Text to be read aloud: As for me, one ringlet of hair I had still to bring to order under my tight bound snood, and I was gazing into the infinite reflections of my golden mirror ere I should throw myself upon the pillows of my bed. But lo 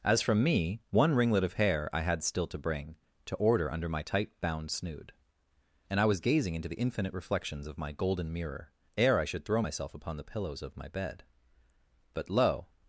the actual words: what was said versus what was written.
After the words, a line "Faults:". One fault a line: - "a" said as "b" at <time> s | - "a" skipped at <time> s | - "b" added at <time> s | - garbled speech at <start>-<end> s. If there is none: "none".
As from me, one ringlet of hair I had still to bring to order under my tight bound snood, and I was gazing into the infinite reflections of my golden mirror ere I should throw myself upon the pillows of my bed. But lo
Faults:
- "for" said as "from" at 0.2 s